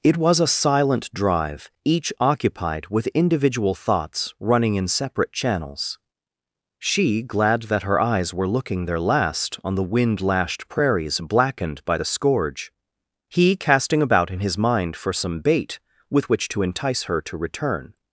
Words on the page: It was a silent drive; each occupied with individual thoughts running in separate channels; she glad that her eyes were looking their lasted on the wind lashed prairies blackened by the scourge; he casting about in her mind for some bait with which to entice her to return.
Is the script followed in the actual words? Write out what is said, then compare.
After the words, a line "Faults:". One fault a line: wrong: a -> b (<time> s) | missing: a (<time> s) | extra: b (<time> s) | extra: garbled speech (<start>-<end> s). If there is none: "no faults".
It was a silent drive; each occupied with individual thoughts running in separate channels; she glad that her eyes were looking their last on the wind lashed prairies blackened by the scourge; he casting about in his mind for some bait with which to entice her to return.
Faults:
wrong: lasted -> last (9.0 s)
wrong: her -> his (14.4 s)